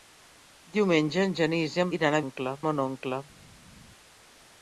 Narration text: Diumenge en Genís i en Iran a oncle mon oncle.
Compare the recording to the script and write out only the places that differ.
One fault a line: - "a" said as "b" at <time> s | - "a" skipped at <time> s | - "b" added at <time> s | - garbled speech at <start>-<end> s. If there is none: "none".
none